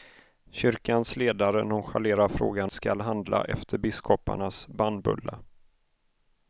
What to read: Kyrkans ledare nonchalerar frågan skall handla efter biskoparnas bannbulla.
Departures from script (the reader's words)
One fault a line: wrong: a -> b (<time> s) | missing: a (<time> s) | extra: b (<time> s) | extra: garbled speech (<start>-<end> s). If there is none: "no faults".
no faults